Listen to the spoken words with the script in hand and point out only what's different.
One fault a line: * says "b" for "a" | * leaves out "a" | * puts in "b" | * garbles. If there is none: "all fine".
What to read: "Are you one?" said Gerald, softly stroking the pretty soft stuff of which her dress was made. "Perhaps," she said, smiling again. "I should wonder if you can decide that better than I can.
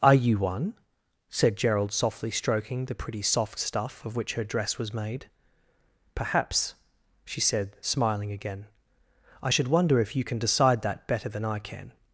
all fine